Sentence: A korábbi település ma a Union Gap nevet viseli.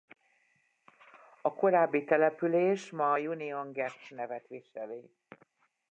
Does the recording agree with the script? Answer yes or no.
yes